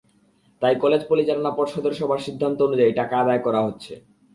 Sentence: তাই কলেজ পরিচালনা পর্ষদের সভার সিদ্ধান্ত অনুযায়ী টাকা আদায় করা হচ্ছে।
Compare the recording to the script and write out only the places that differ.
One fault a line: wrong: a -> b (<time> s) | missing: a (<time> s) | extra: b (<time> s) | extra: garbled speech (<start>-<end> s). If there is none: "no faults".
no faults